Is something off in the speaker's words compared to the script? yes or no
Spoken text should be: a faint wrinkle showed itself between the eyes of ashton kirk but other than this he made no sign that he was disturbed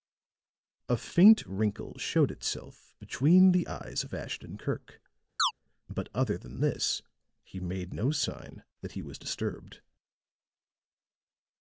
no